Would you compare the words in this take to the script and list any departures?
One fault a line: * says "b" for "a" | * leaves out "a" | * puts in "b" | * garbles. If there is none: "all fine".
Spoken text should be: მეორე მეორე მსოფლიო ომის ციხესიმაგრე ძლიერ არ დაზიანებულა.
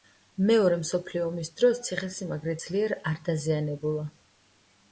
* leaves out "მეორე"
* puts in "დროს"